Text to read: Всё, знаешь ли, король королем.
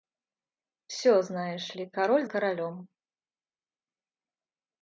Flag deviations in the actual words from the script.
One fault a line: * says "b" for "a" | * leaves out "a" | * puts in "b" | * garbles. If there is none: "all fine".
all fine